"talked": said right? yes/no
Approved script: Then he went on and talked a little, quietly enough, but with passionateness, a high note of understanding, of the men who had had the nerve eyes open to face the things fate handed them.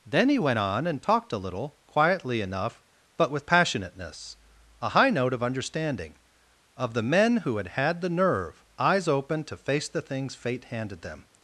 yes